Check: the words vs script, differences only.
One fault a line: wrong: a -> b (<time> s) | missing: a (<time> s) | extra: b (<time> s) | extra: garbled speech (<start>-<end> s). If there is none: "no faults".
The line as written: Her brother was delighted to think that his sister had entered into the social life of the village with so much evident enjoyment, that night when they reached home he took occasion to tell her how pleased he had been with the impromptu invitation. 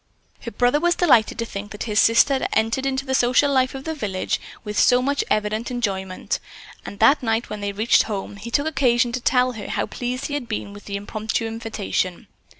extra: and (6.9 s)